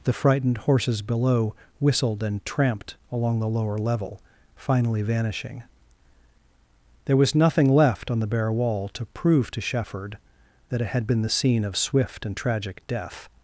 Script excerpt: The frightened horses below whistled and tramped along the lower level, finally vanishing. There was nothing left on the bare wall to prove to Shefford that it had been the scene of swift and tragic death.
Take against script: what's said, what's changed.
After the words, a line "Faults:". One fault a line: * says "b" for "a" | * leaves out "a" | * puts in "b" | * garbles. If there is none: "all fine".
The frightened horses below whistled and tramped along the lower level, finally vanishing. There was nothing left on the bare wall to prove to Shefford that it had been the scene of swift and tragic death.
Faults:
all fine